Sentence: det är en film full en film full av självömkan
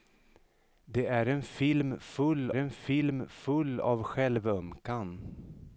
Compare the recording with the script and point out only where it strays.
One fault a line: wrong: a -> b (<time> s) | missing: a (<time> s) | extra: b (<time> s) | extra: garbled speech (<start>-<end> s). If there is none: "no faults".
no faults